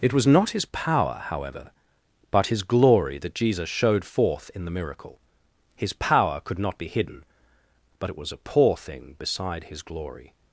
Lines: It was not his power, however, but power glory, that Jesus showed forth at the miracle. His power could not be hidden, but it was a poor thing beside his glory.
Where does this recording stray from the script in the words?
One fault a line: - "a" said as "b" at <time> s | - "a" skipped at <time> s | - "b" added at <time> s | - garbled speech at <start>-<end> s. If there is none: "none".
- "power" said as "his" at 2.5 s
- "at" said as "in" at 4.5 s